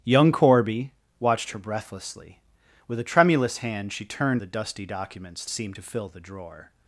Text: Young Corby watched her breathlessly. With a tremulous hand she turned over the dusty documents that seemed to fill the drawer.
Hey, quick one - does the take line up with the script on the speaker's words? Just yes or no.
no